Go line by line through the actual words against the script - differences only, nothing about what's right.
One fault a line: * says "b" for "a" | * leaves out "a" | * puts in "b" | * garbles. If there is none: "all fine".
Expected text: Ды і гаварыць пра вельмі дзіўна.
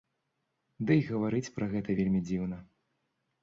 * puts in "гэта"